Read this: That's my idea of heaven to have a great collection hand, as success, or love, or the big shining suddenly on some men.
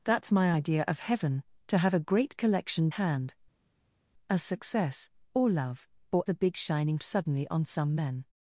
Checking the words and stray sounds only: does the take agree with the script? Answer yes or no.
yes